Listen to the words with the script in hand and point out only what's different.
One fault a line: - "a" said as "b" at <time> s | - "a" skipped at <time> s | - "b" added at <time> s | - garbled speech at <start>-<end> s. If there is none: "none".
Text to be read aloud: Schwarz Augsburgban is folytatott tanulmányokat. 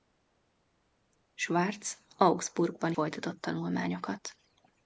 - "is" skipped at 2.9 s